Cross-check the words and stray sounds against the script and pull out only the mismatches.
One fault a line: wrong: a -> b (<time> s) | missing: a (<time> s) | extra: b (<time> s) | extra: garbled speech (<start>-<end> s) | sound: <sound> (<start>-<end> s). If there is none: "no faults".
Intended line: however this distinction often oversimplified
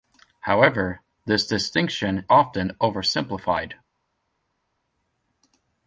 no faults